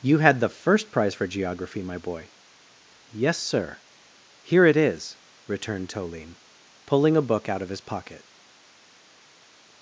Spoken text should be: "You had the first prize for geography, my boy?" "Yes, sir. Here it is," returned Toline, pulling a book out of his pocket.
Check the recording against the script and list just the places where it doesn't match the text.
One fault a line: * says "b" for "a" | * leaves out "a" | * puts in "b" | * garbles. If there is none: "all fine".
all fine